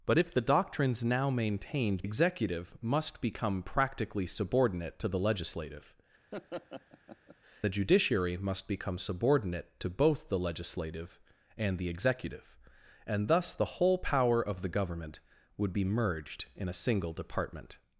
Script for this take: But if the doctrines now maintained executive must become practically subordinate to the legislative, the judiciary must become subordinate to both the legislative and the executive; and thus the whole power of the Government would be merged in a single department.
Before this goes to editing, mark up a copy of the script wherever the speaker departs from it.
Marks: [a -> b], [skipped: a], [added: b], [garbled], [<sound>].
But if the doctrines now maintained executive must become practically subordinate to the legislative, [laugh] the judiciary must become subordinate to both the legislative and the executive; and thus the whole power of the Government would be merged in a single department.